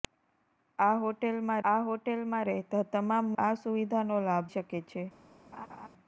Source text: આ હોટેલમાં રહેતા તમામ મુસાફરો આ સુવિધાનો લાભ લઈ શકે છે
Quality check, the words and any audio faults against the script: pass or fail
fail